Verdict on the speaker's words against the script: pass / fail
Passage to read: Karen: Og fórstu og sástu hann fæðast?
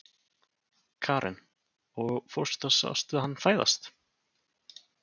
pass